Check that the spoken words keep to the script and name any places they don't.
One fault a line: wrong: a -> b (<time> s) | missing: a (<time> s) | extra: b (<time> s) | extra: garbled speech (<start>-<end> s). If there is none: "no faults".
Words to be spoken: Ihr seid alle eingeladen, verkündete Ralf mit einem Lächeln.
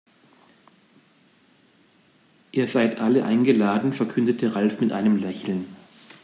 no faults